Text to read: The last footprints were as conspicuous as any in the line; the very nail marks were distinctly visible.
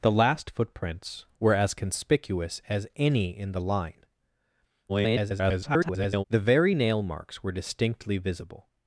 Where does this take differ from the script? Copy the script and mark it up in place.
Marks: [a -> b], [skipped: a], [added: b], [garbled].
The last footprints were as conspicuous as any in the line; [garbled] the very nail marks were distinctly visible.